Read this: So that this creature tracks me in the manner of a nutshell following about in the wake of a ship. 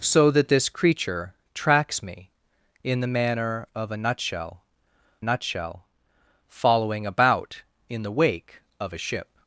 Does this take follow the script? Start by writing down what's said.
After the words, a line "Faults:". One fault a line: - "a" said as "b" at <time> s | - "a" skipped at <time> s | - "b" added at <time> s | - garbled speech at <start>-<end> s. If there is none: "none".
So that this creature tracks me in the manner of a nutshell nutshell following about in the wake of a ship.
Faults:
- "nutshell" added at 5.2 s